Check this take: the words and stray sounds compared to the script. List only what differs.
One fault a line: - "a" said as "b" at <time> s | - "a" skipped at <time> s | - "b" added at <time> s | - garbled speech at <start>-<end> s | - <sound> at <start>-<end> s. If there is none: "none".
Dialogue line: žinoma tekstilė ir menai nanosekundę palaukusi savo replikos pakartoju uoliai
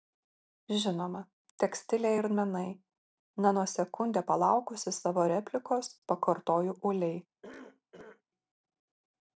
- cough at 7.4-8.2 s